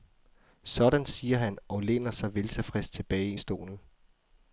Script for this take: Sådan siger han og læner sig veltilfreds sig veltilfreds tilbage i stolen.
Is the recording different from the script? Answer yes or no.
yes